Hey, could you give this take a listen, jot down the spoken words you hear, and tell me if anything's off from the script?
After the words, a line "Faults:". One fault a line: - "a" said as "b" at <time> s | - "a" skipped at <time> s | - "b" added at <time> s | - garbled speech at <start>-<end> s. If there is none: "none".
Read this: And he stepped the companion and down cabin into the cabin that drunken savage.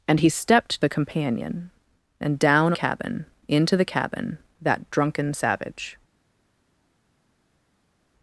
And he stepped the companion and down cabin into the cabin that drunken savage.
Faults:
none